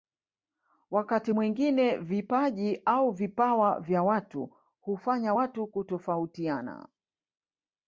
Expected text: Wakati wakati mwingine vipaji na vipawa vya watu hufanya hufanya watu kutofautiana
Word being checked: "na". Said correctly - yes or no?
no